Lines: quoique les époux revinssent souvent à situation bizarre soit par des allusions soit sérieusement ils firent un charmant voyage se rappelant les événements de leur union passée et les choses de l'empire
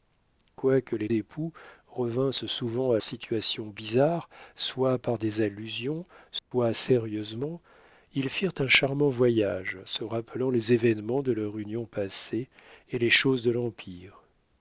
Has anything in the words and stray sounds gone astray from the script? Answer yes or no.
yes